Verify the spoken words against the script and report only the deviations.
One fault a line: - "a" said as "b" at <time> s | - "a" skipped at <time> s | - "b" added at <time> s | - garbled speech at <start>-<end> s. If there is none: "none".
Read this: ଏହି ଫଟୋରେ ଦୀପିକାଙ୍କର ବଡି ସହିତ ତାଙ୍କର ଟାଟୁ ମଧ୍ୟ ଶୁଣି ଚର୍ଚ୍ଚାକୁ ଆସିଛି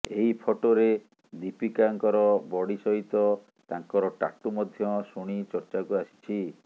none